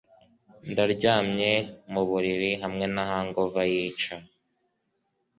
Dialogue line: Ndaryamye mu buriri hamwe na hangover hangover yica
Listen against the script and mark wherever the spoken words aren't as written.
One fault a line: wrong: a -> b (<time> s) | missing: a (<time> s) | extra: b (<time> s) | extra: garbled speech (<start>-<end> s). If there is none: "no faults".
missing: hangover (3.6 s)